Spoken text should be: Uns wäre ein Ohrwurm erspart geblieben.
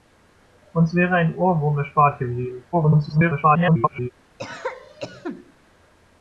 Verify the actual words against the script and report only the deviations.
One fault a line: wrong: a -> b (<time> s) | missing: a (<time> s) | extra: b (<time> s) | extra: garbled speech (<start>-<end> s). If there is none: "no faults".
extra: garbled speech (2.7-4.1 s)